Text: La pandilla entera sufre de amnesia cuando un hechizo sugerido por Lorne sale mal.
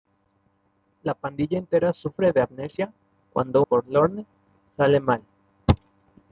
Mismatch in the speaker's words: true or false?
true